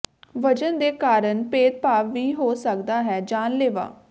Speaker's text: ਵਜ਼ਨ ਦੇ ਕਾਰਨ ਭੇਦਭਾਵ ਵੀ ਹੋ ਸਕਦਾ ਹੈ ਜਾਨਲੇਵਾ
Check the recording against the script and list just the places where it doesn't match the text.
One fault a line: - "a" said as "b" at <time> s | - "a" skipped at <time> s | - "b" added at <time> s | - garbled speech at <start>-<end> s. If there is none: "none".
none